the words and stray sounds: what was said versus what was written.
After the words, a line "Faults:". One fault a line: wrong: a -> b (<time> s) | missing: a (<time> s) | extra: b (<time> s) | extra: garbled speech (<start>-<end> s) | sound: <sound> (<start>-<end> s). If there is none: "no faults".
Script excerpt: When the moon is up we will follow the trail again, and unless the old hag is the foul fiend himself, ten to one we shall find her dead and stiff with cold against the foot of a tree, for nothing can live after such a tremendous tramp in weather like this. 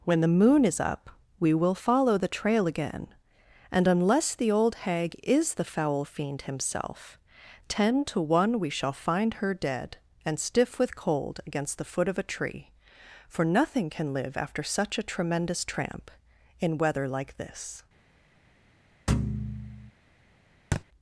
When the moon is up we will follow the trail again, and unless the old hag is the foul fiend himself, ten to one we shall find her dead and stiff with cold against the foot of a tree, for nothing can live after such a tremendous tramp in weather like this.
Faults:
sound: thud (19.1-19.9 s)
sound: thud (20.7-20.8 s)